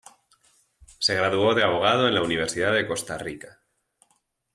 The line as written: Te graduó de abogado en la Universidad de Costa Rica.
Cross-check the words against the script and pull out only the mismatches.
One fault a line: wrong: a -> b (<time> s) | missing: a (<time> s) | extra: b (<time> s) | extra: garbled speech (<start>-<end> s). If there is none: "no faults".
wrong: Te -> Se (1.0 s)